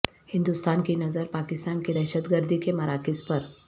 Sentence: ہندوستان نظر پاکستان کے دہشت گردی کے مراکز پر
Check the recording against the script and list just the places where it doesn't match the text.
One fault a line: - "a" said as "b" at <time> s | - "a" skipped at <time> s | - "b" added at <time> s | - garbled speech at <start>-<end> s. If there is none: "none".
- "کی" added at 0.8 s